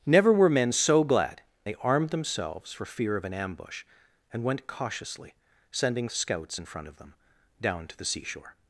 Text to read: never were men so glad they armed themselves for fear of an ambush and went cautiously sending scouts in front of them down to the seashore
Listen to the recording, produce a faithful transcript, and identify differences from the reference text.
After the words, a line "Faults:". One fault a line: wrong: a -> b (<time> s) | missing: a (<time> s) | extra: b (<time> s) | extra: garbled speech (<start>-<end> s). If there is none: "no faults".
never were men so glad they armed themselves for fear of an ambush and went cautiously sending scouts in front of them down to the seashore
Faults:
no faults